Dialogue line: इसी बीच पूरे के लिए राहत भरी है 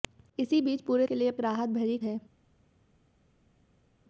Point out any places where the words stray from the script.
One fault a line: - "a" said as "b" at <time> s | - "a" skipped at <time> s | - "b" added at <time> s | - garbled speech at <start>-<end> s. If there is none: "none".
none